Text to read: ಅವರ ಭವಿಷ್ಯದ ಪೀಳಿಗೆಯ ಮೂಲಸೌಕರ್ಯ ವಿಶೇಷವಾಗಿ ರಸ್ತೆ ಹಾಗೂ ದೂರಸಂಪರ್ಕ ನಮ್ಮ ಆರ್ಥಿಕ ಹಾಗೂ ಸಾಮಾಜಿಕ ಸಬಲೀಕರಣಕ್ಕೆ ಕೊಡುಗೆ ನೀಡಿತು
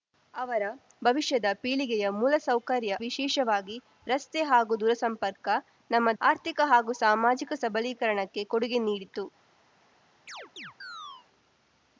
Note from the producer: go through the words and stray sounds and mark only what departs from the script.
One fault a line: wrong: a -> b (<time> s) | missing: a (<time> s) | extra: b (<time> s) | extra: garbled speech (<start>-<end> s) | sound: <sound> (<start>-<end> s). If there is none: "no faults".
sound: chirp (10.3-11.3 s)